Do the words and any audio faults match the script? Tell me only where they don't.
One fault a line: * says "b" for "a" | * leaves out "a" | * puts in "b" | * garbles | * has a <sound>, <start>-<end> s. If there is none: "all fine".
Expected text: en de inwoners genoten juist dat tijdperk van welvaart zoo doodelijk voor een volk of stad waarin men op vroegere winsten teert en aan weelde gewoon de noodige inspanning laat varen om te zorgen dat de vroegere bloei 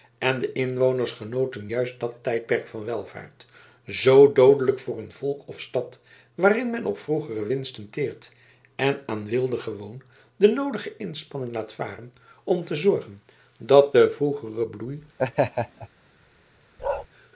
* has a laugh, 15.2-15.9 s
* has a bark, 16.8-17.1 s